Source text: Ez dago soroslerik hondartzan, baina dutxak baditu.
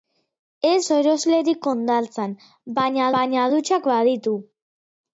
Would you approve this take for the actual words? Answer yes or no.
no